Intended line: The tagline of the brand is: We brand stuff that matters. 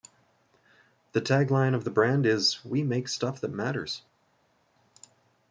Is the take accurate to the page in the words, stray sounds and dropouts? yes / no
no